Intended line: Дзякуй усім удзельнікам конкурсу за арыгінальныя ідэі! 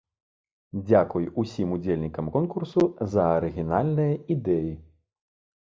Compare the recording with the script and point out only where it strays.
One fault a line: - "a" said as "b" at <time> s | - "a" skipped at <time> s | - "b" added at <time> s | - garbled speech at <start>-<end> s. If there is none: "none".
none